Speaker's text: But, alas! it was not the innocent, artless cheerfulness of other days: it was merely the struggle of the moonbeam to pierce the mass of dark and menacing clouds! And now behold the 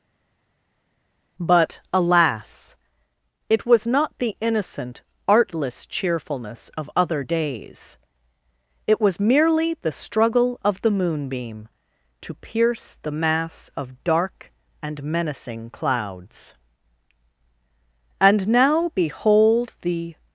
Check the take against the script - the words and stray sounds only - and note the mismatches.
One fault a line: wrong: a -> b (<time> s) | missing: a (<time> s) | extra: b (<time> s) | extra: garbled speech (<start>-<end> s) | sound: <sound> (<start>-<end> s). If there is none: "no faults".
no faults